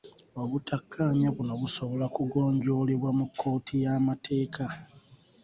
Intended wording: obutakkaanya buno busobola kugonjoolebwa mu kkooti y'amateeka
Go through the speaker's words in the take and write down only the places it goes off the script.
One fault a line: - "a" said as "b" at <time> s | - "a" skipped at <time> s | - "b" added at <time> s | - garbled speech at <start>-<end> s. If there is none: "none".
none